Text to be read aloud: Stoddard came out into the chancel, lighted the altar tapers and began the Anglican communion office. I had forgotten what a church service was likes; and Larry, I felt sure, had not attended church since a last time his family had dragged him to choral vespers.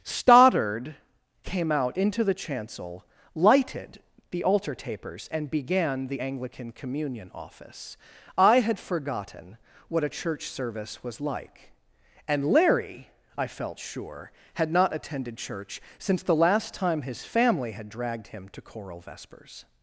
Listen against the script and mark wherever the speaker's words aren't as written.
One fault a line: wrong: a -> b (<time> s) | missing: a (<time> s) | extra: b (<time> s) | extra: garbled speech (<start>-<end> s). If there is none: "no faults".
wrong: likes -> like (11.2 s)
wrong: a -> the (16.2 s)